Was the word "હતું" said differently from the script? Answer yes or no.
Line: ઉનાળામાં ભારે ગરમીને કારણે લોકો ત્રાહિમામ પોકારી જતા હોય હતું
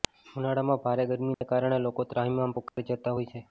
yes